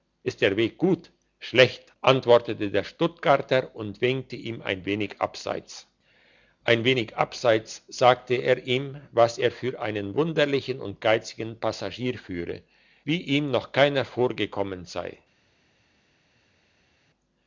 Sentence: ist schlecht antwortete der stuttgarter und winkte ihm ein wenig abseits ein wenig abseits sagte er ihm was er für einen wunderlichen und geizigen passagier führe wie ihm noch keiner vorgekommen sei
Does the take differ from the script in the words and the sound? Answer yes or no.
yes